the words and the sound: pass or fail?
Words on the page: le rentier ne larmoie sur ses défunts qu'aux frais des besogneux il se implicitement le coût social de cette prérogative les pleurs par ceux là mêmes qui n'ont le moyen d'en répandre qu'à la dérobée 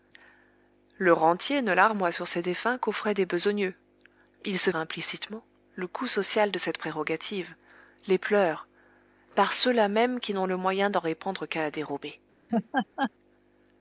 fail